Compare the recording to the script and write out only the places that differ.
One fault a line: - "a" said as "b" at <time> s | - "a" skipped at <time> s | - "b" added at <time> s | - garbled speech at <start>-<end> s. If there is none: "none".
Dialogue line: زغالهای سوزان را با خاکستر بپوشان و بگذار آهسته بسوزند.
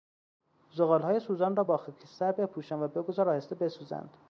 none